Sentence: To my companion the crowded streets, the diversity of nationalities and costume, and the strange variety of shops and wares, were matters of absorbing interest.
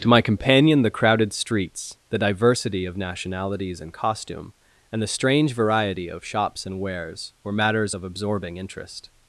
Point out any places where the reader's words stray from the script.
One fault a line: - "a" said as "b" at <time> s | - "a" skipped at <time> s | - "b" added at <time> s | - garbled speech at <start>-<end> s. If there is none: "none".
none